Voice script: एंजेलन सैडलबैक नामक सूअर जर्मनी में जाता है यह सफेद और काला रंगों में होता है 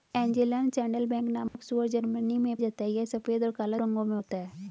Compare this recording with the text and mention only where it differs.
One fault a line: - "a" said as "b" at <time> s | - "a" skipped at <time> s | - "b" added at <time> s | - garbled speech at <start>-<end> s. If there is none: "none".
none